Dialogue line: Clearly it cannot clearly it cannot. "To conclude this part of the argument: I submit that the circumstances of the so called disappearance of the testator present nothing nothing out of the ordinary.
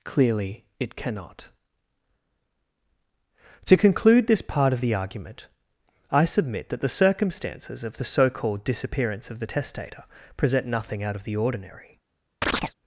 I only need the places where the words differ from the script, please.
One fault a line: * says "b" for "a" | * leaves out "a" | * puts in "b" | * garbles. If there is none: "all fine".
* leaves out "clearly it cannot"
* leaves out "nothing"